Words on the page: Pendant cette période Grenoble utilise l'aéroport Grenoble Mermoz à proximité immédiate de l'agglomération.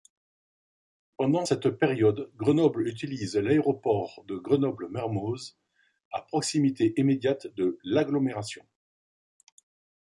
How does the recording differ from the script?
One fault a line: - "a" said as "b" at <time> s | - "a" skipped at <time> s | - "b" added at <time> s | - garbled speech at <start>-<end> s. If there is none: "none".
- "de" added at 4.3 s